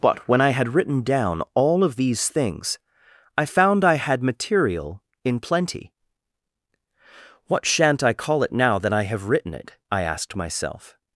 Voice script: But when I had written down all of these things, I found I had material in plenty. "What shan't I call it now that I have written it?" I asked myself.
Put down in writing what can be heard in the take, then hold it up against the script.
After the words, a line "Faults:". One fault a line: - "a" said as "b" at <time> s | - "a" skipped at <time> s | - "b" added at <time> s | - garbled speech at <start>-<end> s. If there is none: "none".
But when I had written down all of these things, I found I had material in plenty. "What shan't I call it now that I have written it?" I asked myself.
Faults:
none